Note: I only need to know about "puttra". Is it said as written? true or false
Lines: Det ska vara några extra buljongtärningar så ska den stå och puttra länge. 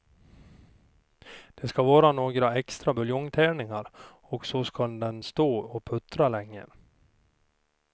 true